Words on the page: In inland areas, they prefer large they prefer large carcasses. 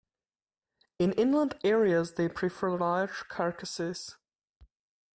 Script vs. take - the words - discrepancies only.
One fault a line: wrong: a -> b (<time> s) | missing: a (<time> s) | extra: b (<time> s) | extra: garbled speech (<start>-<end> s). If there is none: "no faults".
missing: they prefer large (3.2 s)